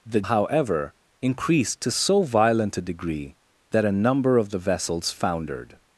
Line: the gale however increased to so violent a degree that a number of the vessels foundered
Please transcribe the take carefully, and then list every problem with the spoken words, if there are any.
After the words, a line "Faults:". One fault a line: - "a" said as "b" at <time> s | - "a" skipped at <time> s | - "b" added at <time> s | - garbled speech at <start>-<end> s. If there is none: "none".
the however increased to so violent a degree that a number of the vessels foundered
Faults:
- "gale" skipped at 0.2 s